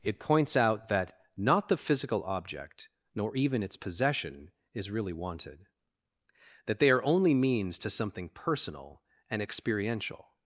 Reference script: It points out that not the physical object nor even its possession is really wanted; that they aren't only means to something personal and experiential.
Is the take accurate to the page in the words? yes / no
no